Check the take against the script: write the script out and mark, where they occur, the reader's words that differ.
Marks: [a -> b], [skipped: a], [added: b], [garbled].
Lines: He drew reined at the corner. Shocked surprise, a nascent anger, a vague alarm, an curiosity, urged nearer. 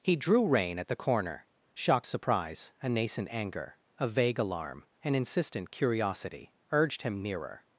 He drew [reined -> rein] at the corner. Shocked surprise, a nascent anger, a vague alarm, an [added: insistent] curiosity, urged [added: him] nearer.